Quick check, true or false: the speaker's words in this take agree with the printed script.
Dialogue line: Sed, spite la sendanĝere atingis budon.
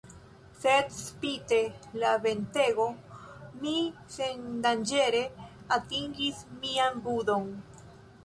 false